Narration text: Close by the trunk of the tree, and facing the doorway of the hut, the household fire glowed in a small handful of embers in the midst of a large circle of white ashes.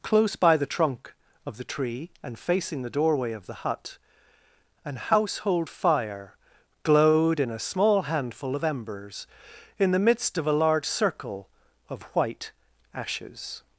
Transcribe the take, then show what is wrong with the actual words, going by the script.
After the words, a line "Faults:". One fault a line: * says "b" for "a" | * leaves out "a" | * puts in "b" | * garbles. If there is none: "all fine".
Close by the trunk of the tree, and facing the doorway of the hut, an household fire glowed in a small handful of embers in the midst of a large circle of white ashes.
Faults:
* says "an" for "the"